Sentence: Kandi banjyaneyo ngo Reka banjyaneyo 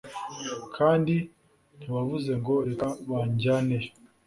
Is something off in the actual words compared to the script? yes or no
yes